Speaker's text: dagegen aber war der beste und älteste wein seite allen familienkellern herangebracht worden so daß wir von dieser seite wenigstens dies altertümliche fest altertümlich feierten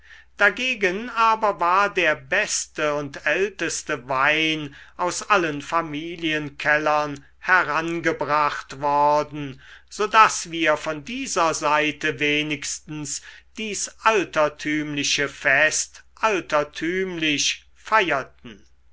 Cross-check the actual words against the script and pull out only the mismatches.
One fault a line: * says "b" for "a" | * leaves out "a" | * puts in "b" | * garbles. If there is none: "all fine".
* says "aus" for "seite"